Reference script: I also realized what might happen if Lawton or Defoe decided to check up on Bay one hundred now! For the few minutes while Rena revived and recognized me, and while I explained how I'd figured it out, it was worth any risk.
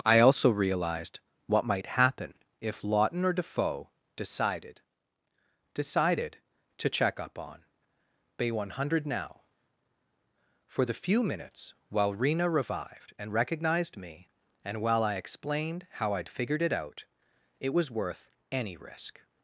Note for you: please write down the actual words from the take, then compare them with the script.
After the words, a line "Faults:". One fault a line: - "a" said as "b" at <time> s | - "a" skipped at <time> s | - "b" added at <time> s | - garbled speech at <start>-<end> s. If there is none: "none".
I also realized what might happen if Lawton or Defoe decided decided to check up on Bay one hundred now! For the few minutes while Rena revived and recognized me, and while I explained how I'd figured it out, it was worth any risk.
Faults:
- "decided" added at 5.7 s